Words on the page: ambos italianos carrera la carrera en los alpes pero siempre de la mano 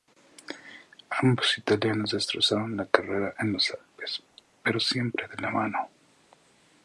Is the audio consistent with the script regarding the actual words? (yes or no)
no